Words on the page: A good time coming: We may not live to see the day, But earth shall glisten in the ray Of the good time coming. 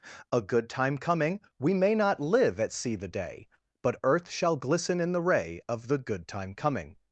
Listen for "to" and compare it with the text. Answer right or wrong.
wrong